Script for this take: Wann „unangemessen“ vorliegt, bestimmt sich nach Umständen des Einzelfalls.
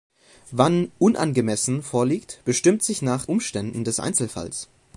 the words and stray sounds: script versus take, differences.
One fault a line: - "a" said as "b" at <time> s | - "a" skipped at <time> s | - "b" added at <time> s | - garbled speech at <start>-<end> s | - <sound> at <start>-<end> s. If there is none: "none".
none